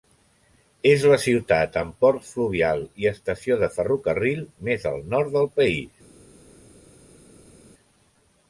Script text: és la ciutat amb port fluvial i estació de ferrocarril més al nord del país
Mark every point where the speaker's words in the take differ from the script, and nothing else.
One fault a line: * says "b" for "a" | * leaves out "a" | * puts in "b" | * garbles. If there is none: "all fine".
all fine